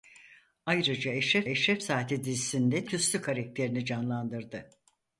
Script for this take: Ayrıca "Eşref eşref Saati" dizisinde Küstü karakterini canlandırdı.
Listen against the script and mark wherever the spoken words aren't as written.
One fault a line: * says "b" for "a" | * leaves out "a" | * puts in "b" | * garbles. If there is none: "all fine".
all fine